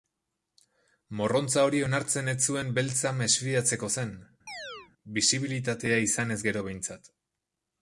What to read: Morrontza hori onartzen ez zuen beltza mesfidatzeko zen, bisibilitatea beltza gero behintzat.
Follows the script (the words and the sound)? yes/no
no